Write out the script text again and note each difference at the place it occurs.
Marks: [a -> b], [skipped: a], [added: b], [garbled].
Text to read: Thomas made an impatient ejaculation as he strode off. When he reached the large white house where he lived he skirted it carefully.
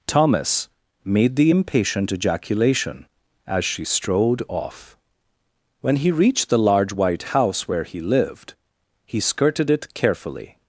Thomas made [an -> the] impatient ejaculation as [he -> she] strode off. When he reached the large white house where he lived he skirted it carefully.